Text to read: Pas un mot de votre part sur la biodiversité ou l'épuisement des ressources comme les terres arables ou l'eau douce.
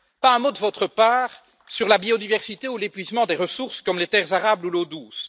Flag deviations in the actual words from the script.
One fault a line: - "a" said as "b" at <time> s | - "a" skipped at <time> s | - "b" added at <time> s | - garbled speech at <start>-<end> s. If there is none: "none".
none